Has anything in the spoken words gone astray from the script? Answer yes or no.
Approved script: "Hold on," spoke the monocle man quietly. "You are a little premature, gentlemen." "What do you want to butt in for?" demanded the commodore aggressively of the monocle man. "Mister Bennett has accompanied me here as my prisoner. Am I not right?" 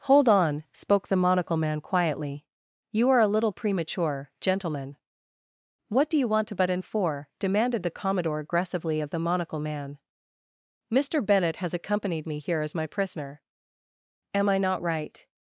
no